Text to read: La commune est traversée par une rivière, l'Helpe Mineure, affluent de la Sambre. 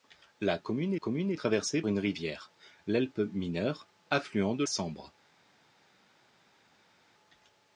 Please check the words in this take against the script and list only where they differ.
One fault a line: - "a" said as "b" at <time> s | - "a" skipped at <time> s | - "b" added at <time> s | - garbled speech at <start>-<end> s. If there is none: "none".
- "commune" added at 0.9 s
- "par" skipped at 1.8 s
- "la" skipped at 4.6 s